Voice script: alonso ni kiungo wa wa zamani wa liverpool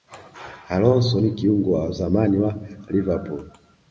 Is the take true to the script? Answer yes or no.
no